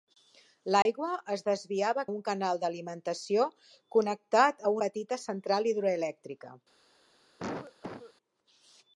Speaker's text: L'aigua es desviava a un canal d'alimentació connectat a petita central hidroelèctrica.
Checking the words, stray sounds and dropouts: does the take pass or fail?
fail